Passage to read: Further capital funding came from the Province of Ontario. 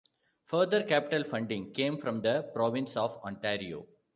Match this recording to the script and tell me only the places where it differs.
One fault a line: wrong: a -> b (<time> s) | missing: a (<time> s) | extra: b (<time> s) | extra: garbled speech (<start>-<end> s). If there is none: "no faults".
no faults